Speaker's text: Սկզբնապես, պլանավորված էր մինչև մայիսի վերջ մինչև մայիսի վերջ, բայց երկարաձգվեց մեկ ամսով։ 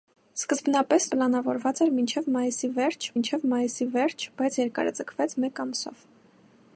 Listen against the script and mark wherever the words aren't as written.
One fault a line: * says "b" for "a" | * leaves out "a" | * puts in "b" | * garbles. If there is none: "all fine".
all fine